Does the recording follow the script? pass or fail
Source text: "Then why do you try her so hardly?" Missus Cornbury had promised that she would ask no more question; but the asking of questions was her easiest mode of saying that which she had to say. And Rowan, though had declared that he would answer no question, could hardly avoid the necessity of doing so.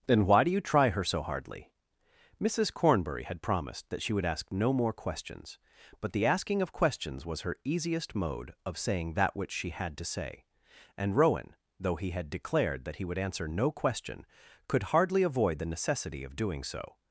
fail